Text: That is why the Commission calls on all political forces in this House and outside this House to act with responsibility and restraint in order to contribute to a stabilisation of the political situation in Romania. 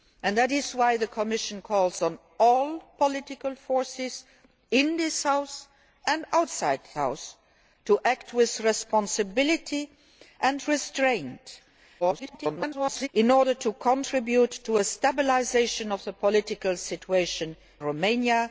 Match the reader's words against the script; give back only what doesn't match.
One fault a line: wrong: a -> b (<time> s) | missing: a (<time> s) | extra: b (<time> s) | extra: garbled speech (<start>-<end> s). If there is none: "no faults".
missing: this (6.8 s)
extra: garbled speech (12.0-13.1 s)
missing: in (17.6 s)